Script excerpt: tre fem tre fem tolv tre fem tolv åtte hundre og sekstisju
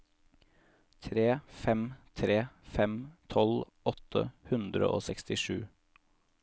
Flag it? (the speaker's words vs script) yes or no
yes